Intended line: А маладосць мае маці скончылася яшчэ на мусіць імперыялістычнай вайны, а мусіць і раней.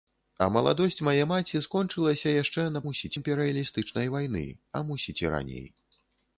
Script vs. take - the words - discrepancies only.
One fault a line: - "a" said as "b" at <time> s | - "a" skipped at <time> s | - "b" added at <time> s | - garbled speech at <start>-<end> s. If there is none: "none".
none